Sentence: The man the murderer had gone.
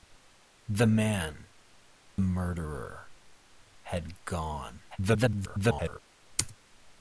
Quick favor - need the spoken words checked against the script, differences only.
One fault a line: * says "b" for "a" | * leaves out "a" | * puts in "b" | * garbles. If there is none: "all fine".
* leaves out "the"
* garbles